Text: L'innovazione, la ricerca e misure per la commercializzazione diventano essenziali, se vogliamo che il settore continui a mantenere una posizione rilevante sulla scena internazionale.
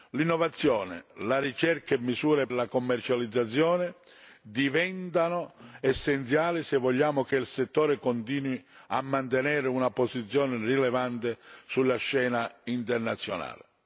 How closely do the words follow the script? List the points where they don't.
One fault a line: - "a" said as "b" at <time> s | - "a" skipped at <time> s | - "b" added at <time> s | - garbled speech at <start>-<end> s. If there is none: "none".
- "per" skipped at 2.5 s